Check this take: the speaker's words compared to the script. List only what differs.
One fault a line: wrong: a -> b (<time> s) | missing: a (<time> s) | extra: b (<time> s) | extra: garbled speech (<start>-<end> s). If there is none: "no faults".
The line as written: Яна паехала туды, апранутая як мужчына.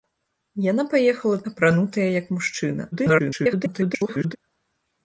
missing: туды (1.4 s)
extra: garbled speech (2.9-4.4 s)